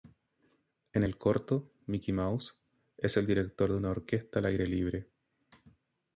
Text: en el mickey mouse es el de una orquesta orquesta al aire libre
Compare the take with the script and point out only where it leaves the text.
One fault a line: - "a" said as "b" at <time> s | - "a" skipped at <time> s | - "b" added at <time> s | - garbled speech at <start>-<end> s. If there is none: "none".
- "corto" added at 1.2 s
- "director" added at 3.3 s
- "orquesta" skipped at 4.4 s